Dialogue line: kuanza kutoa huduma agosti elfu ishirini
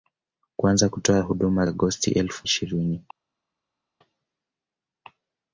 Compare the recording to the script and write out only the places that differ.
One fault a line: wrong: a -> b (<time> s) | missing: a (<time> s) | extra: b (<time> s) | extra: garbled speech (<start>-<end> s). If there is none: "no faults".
no faults